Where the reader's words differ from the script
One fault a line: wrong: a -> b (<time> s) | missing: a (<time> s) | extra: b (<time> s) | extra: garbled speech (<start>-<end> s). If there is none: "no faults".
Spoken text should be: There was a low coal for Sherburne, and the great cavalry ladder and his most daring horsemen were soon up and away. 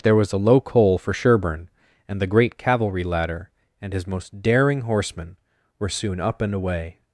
no faults